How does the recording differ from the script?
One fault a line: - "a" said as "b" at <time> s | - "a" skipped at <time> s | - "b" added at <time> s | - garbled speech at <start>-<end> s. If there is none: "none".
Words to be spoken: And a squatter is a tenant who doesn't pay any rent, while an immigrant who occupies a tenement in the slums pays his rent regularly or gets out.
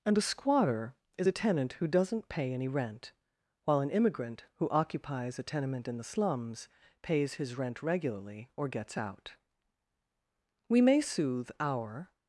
- "We may soothe our" added at 10.7 s